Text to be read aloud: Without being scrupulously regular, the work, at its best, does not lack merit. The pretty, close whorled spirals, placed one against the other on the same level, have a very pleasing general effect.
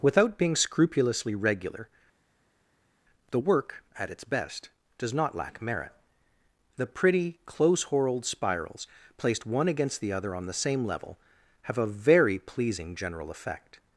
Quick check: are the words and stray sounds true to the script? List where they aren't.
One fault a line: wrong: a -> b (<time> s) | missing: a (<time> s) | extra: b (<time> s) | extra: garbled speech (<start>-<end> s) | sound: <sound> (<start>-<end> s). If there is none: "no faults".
no faults